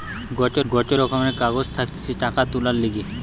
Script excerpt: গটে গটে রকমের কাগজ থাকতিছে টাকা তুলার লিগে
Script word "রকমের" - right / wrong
right